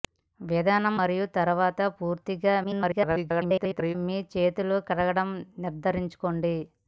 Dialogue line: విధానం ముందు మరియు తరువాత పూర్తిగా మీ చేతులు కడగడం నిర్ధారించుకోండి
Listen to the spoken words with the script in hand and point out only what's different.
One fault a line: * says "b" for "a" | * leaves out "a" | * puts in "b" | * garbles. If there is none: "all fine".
* leaves out "ముందు"
* garbles